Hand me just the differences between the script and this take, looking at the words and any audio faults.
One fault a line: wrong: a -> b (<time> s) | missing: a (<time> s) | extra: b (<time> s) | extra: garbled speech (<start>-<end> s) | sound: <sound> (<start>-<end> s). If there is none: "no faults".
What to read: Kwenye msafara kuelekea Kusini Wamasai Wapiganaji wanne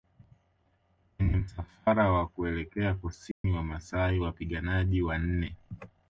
extra: wa (2.1 s)
sound: dropout (3.3-3.4 s)